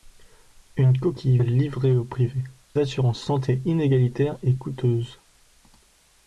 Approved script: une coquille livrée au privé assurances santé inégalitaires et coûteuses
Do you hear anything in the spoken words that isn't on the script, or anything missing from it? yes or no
no